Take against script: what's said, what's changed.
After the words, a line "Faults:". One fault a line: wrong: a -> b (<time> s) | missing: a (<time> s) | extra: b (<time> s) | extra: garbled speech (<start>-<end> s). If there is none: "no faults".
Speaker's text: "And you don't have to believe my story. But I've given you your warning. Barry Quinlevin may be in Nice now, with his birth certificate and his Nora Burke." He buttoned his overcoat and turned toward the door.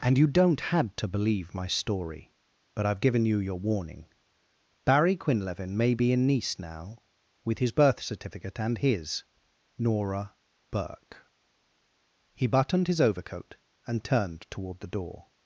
"And you don't had to believe my story. But I've given you your warning. Barry Quinlevin may be in Nice now, with his birth certificate and his Nora Burke." He buttoned his overcoat and turned toward the door.
Faults:
wrong: have -> had (0.6 s)